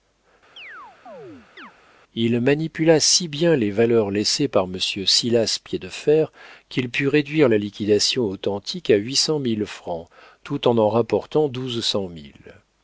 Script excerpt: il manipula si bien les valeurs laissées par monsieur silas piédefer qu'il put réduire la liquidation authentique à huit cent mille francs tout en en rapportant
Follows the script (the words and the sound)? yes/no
no